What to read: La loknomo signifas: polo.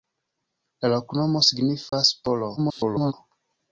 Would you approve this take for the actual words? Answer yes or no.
no